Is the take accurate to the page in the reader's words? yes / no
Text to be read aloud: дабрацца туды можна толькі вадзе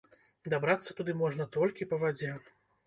no